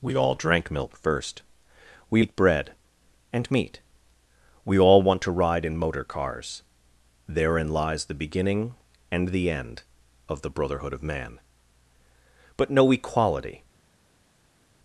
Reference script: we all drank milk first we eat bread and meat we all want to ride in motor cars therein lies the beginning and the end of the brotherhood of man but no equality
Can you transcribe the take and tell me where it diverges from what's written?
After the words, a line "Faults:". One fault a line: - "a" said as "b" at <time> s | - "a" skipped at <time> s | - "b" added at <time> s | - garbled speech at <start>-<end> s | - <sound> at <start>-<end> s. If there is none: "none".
we all drank milk first we eat bread and meat we all want to ride in motor cars therein lies the beginning and the end of the brotherhood of man but no equality
Faults:
none